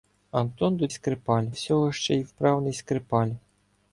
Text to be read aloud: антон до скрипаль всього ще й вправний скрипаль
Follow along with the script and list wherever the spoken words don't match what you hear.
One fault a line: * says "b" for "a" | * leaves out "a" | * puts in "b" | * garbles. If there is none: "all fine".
all fine